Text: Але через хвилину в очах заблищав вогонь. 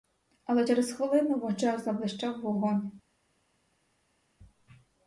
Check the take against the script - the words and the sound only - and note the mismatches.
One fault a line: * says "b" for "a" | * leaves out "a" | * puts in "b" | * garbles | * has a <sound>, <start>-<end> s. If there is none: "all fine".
all fine